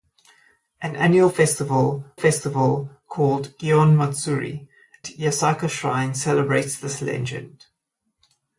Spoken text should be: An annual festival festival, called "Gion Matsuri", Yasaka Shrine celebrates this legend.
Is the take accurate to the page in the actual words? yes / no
yes